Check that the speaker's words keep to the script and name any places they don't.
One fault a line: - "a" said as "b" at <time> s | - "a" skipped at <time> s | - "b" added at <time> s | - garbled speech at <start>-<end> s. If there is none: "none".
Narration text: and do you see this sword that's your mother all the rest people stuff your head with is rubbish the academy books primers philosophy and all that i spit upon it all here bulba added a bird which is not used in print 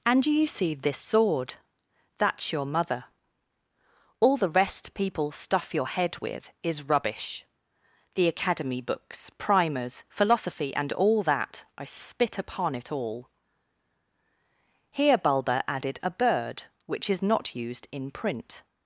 none